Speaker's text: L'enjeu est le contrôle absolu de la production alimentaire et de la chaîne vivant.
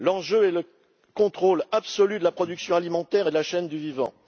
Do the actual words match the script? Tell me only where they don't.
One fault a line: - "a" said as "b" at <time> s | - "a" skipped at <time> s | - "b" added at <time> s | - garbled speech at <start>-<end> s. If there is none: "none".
- "du" added at 3.7 s